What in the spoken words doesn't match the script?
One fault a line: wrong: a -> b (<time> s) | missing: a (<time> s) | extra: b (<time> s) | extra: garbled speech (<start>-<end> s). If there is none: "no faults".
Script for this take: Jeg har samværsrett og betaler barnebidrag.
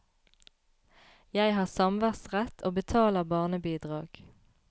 no faults